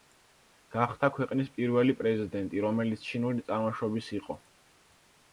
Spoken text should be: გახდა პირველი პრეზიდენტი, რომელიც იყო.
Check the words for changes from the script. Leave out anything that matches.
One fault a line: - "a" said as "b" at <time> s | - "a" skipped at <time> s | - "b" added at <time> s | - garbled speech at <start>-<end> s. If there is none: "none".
- "ქვეყნის" added at 1.2 s
- "ჩინური წარმოშობის" added at 3.1 s